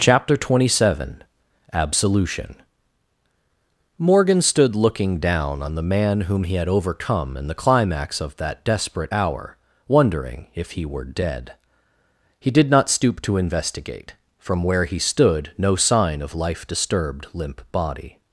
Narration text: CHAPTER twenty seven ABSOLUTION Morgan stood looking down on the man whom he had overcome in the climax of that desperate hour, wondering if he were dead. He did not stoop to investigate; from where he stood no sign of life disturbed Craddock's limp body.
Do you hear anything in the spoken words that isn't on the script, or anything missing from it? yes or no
yes